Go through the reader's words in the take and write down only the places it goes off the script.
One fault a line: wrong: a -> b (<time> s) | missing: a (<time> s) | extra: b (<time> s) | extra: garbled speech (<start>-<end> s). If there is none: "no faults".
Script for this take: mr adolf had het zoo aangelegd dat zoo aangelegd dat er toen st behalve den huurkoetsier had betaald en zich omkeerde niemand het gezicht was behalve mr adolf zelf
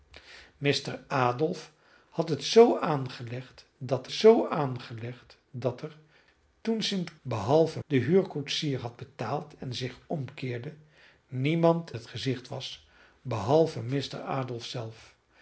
no faults